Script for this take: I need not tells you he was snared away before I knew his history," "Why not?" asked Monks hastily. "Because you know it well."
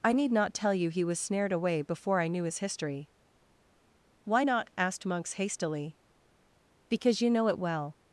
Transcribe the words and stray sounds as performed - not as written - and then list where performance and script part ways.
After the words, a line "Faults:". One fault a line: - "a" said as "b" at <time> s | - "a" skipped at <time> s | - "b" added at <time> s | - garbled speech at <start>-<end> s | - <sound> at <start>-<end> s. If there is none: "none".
I need not tell you he was snared away before I knew his history," "Why not?" asked Monks hastily. "Because you know it well."
Faults:
- "tells" said as "tell" at 0.6 s